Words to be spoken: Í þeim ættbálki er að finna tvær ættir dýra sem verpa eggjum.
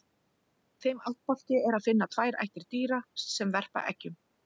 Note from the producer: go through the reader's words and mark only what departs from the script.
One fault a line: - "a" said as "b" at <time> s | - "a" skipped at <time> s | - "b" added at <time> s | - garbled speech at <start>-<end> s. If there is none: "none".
none